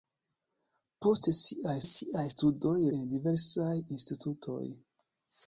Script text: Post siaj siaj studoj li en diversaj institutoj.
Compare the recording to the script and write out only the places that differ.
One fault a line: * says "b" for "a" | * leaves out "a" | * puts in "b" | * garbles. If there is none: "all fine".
all fine